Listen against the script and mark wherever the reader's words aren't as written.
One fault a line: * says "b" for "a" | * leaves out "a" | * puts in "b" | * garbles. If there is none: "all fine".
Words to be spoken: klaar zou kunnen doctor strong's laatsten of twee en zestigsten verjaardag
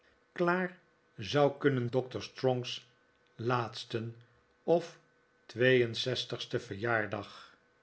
all fine